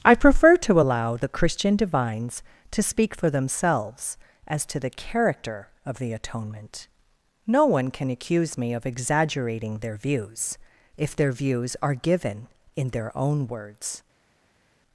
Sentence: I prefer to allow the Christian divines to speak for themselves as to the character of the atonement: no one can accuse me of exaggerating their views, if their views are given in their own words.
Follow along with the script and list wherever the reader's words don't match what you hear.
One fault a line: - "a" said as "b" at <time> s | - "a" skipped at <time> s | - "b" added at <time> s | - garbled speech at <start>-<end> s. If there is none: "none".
none